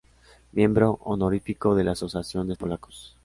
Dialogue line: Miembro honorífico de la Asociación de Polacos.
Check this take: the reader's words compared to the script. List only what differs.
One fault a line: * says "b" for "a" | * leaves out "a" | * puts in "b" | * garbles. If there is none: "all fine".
all fine